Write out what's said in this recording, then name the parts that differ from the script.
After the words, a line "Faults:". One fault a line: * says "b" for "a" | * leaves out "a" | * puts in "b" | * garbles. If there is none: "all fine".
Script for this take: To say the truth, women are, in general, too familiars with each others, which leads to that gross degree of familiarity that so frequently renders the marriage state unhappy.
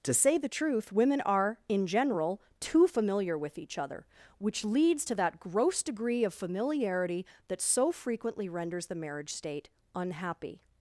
To say the truth, women are, in general, too familiar with each other, which leads to that gross degree of familiarity that so frequently renders the marriage state unhappy.
Faults:
* says "familiar" for "familiars"
* says "other" for "others"